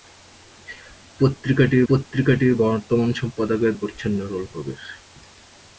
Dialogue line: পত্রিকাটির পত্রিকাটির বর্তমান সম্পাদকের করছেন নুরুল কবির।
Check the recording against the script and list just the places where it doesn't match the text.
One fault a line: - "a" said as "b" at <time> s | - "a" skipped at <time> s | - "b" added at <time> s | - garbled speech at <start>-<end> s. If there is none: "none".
none